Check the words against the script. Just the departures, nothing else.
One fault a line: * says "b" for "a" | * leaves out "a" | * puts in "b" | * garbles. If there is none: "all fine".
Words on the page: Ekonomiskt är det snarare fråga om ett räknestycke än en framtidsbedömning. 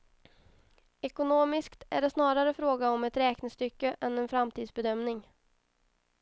all fine